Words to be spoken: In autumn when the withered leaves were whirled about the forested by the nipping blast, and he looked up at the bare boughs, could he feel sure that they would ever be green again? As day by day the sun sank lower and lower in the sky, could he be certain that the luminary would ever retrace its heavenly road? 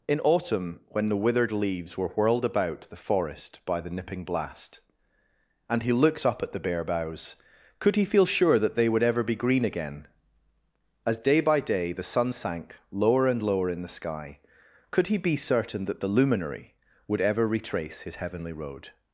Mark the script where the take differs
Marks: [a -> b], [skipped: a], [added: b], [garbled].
In autumn when the withered leaves were whirled about the [forested -> forest] by the nipping blast, and he looked up at the bare boughs, could he feel sure that they would ever be green again? As day by day the sun sank lower and lower in the sky, could he be certain that the luminary would ever retrace [its -> his] heavenly road?